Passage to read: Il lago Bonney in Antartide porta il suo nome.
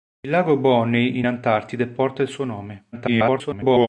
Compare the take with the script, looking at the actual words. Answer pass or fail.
fail